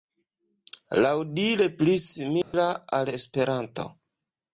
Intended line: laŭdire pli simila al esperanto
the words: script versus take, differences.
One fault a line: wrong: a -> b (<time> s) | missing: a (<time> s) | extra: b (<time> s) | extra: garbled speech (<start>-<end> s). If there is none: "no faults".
no faults